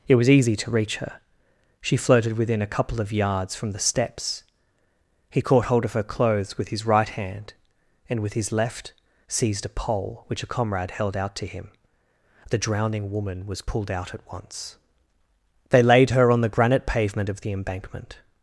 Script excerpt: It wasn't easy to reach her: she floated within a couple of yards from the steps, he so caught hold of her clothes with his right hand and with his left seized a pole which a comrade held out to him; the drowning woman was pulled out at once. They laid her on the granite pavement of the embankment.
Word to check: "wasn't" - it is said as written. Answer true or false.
false